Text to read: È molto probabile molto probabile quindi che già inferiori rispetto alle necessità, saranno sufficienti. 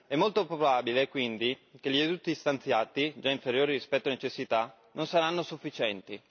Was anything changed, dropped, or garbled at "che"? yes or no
yes